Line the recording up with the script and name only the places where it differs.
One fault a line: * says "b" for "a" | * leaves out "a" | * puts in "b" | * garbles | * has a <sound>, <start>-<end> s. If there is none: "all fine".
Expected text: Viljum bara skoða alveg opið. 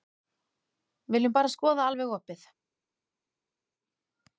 all fine